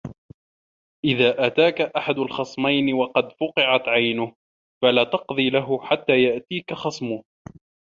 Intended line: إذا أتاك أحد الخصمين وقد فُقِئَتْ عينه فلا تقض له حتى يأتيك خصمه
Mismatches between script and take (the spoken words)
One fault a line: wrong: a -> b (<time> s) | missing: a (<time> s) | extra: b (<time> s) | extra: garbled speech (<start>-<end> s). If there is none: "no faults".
no faults